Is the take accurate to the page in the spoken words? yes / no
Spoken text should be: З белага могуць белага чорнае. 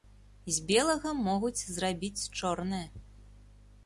no